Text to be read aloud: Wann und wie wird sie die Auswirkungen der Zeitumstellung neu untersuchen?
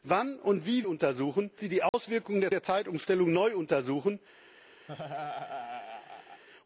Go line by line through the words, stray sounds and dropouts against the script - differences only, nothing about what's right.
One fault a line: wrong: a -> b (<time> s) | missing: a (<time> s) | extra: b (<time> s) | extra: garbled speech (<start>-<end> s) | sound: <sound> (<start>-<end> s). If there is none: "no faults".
wrong: wird -> untersuchen (0.9 s)
sound: dropout (1.9-1.9 s)
extra: der (2.5 s)
sound: laugh (4.9-6.4 s)